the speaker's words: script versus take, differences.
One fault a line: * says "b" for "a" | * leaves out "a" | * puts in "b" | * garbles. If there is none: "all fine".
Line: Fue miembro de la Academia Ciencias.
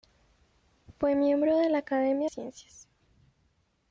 all fine